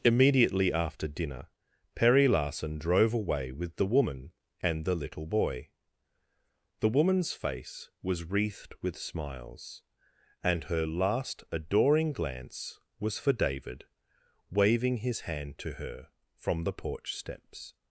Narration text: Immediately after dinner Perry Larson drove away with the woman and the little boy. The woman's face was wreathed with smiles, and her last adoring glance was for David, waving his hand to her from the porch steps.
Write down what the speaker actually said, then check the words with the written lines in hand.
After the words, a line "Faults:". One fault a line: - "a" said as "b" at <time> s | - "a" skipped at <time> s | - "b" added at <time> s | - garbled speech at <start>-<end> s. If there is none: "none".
Immediately after dinner Perry Larson drove away with the woman and the little boy. The woman's face was wreathed with smiles, and her last adoring glance was for David, waving his hand to her from the porch steps.
Faults:
none